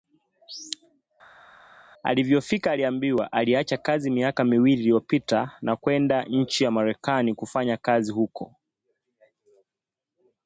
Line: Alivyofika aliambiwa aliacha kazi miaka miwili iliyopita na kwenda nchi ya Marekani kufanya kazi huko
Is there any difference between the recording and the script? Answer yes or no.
no